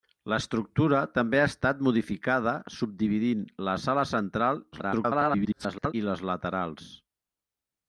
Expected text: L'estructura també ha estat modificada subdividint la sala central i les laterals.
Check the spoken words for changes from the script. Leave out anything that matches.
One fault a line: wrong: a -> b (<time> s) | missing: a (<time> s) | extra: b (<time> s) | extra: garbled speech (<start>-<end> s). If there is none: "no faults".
extra: garbled speech (4.7-5.9 s)